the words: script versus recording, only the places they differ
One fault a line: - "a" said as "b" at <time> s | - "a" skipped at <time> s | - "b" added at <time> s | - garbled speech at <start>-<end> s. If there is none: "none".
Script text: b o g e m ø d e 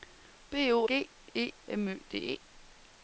none